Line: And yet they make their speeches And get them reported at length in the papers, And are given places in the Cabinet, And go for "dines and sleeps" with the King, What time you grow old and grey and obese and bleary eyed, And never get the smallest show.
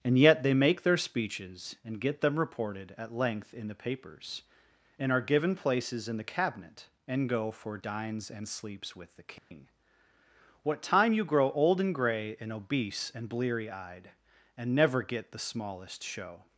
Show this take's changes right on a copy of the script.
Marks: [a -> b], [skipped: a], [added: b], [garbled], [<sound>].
And yet they make their speeches And get them reported at length in the papers, And are given places in the Cabinet, And go for "dines and sleeps" with the King, [dropout] What time you grow old and grey and obese and bleary eyed, And never get the smallest show.